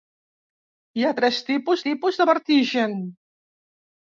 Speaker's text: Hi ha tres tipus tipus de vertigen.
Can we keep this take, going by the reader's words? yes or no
yes